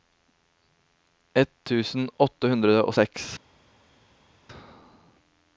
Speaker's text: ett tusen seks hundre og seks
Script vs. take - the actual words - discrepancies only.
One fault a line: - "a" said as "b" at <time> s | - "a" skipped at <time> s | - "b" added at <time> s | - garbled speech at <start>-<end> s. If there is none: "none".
- "seks" said as "åtte" at 2.2 s